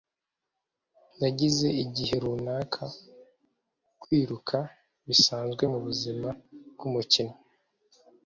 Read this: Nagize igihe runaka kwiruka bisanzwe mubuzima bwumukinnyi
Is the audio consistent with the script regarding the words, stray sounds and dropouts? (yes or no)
yes